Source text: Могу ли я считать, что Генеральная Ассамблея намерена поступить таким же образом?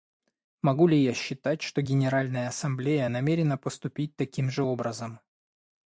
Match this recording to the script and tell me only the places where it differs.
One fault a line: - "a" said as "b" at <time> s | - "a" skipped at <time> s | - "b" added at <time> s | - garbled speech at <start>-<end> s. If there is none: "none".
none